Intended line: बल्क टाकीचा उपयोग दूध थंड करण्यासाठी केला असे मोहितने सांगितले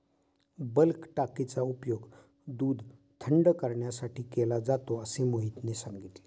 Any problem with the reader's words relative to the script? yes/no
yes